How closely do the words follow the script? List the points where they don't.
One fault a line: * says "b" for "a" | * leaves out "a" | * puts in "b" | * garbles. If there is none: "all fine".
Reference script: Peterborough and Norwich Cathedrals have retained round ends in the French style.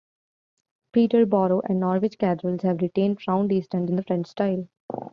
* puts in "east"